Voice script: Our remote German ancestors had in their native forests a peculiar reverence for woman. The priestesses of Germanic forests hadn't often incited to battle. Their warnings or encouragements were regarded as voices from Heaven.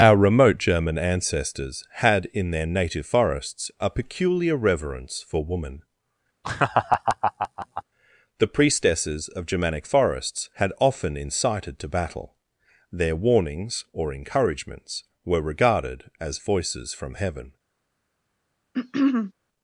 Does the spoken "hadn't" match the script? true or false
false